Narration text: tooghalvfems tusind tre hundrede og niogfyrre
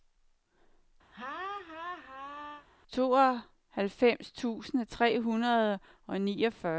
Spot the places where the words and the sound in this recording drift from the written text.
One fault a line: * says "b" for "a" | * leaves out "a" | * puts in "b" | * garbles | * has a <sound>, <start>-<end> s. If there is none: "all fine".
* has a laugh, 1.1-2.7 s